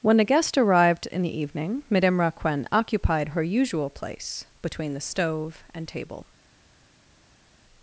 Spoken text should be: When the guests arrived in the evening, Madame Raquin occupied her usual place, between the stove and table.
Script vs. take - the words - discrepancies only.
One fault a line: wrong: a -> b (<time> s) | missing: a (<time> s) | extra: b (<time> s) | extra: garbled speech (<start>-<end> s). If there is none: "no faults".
wrong: guests -> guest (0.2 s)